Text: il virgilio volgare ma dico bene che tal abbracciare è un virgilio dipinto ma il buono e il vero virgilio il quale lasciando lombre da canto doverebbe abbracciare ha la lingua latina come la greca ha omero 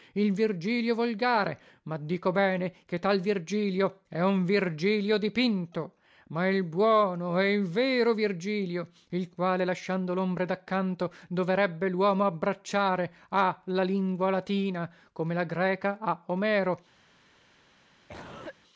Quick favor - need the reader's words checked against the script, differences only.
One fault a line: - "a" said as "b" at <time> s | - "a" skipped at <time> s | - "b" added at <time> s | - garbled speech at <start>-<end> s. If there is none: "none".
- "abbracciare" said as "virgilio" at 3.2 s
- "luomo" added at 11.9 s